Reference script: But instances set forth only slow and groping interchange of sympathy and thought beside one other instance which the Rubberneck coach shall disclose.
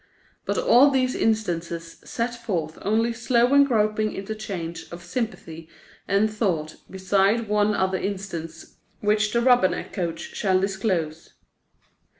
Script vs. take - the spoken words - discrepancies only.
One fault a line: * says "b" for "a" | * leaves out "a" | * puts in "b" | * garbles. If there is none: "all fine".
* puts in "all these"